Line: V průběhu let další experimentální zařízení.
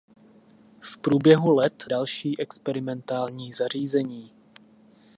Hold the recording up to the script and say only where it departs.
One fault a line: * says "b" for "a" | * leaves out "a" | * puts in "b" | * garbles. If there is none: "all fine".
all fine